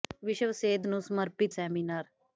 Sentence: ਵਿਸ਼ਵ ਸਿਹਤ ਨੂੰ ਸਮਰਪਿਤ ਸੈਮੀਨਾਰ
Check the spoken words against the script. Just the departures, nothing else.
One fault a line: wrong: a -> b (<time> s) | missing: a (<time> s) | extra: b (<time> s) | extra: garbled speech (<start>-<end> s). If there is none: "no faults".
no faults